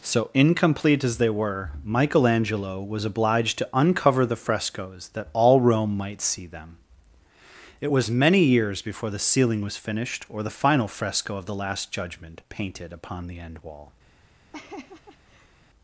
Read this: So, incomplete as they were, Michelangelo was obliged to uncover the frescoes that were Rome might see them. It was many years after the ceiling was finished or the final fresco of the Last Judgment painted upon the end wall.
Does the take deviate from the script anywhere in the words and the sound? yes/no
yes